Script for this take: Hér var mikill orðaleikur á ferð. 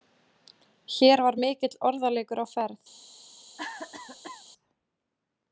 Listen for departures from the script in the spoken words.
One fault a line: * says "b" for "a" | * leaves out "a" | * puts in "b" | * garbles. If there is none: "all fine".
all fine